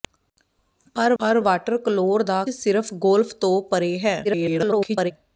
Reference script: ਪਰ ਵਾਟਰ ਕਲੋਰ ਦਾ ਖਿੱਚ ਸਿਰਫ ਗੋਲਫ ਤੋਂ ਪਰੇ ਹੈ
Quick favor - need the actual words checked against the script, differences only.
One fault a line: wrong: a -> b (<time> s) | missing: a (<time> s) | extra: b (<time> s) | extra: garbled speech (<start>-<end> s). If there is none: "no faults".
extra: ਪਰ (1.2 s)
missing: ਖਿੱਚ (2.4 s)
extra: garbled speech (4.2-5.1 s)